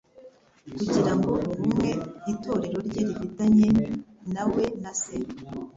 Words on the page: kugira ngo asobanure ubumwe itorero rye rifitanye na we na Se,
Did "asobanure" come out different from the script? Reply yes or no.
yes